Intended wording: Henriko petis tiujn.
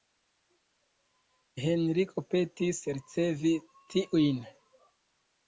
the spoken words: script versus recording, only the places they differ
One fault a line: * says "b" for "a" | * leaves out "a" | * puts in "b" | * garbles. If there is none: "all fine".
* puts in "ricevi"